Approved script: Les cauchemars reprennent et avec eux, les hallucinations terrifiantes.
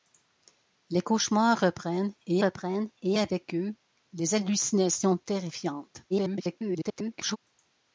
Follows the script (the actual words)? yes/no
no